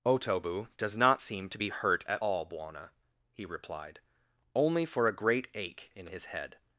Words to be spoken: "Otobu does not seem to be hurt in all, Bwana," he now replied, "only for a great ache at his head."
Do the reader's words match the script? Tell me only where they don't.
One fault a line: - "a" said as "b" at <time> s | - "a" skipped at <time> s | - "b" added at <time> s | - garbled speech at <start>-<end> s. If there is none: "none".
- "in" said as "at" at 2.1 s
- "now" skipped at 3.4 s
- "at" said as "in" at 5.9 s